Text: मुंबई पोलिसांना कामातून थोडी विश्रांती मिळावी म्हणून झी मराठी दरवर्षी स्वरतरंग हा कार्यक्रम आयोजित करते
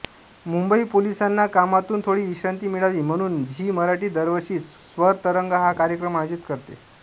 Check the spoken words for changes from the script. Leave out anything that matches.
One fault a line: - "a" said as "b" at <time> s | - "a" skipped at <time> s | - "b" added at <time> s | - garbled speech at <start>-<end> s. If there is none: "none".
none